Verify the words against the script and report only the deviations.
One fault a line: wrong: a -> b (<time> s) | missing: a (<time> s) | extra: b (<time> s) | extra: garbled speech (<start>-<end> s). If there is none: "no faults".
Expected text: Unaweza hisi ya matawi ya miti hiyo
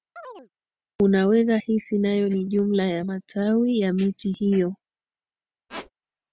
extra: nayo ni jumla (2.0 s)